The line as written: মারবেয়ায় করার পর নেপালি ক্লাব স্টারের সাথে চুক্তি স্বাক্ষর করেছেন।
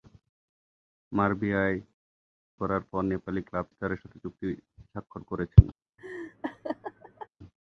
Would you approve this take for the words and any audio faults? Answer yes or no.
no